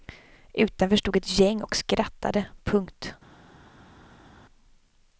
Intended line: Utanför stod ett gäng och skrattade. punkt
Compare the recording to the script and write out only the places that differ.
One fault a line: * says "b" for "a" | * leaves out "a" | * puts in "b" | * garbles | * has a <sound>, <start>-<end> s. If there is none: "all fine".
all fine